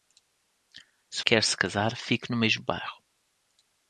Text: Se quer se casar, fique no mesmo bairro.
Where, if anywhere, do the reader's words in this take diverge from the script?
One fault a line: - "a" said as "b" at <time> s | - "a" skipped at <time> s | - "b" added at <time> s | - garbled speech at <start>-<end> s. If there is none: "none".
none